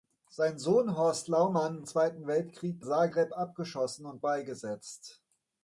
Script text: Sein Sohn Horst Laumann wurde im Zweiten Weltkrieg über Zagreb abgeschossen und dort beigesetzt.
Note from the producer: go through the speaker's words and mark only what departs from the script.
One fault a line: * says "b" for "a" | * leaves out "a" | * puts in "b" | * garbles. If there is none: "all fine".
* leaves out "wurde im"
* leaves out "über"
* leaves out "dort"